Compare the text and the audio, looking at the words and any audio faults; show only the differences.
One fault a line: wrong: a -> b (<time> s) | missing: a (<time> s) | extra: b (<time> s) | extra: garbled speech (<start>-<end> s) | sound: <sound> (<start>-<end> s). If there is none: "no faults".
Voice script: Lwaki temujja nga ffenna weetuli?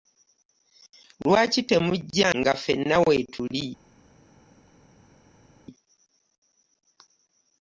no faults